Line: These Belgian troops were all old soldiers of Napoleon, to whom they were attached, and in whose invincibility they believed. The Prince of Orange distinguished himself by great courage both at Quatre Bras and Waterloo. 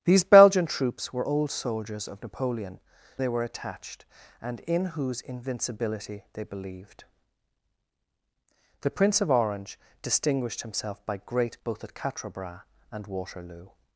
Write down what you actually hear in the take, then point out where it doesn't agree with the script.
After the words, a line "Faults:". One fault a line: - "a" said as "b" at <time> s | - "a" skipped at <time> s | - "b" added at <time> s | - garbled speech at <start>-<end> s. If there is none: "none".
These Belgian troops were old soldiers of Napoleon, they were attached, and in whose invincibility they believed. The Prince of Orange distinguished himself by great both at Quatre Bras and Waterloo.
Faults:
- "all" skipped at 1.2 s
- "to whom" skipped at 2.8 s
- "courage" skipped at 11.6 s